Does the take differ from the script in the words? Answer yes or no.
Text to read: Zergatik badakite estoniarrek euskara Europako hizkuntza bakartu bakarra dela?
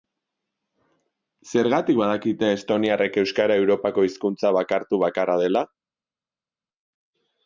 no